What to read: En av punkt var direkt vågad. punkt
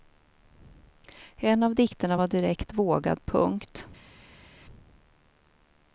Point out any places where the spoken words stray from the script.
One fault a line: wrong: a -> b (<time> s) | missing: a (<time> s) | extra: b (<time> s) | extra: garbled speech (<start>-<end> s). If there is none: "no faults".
wrong: punkt -> dikterna (1.8 s)